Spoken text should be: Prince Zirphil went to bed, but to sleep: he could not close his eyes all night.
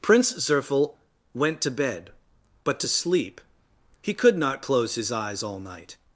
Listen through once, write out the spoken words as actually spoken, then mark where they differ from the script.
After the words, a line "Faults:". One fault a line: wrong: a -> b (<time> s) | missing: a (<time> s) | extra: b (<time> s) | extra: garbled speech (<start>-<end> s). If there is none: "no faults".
Prince Zirphil went to bed, but to sleep: he could not close his eyes all night.
Faults:
no faults